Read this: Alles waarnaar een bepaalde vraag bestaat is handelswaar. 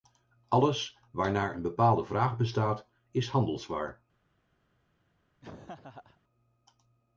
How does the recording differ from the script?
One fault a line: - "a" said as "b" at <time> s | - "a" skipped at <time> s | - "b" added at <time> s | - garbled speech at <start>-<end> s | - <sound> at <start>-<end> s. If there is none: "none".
- laugh at 5.4-6.2 s